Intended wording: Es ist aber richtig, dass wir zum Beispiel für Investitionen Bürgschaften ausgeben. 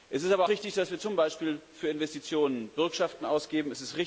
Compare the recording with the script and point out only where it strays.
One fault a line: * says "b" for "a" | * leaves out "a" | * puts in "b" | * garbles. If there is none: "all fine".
all fine